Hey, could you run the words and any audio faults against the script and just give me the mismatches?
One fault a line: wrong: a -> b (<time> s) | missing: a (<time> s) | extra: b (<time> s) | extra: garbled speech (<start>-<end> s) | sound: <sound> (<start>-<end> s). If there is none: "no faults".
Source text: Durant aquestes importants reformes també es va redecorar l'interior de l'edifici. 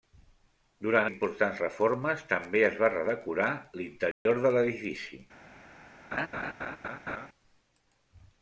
missing: aquestes (1.1 s)
sound: dropout (4.1-4.3 s)
sound: laugh (6.1-7.3 s)